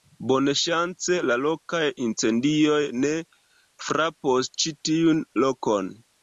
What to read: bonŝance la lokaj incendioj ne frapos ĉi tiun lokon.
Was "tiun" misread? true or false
false